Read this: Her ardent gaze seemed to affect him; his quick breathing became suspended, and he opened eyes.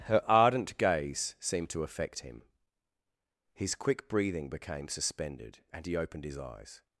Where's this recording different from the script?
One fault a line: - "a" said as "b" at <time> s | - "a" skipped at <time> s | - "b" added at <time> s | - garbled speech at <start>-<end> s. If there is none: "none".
- "his" added at 6.2 s